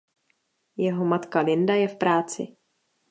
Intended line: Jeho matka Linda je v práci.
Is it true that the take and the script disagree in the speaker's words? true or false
false